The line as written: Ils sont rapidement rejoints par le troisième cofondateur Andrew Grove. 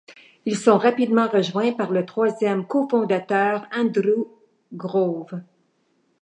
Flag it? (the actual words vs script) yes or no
no